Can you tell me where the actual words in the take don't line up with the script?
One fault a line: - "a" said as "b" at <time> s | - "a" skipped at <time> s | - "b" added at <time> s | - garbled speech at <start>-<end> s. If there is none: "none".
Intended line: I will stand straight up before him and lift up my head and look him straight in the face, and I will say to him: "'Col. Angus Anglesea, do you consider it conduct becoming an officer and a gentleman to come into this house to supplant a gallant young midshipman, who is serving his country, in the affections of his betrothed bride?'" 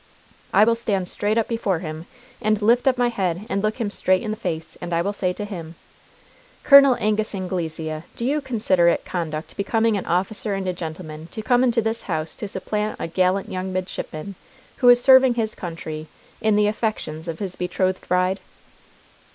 none